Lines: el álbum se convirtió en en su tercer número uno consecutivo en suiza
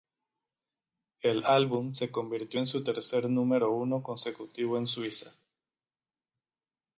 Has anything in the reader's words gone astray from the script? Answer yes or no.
yes